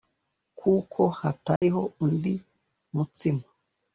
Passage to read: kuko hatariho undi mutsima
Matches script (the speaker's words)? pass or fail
pass